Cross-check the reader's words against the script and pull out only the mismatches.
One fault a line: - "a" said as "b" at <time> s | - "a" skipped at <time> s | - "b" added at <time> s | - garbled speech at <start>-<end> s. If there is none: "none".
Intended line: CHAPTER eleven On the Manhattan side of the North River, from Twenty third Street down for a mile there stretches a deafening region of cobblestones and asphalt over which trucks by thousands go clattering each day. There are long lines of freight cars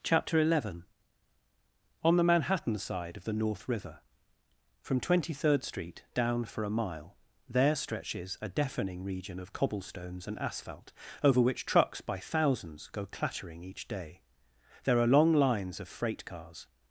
none